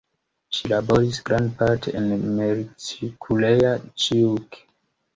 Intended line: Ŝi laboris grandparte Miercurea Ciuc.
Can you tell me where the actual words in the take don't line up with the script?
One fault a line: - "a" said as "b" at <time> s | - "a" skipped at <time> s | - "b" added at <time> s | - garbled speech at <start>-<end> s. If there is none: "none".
- "en" added at 2.0 s